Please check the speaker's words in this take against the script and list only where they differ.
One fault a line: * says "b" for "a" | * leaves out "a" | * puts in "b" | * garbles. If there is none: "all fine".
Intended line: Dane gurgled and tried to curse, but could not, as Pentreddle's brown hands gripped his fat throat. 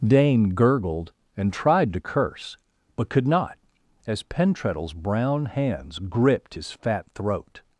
all fine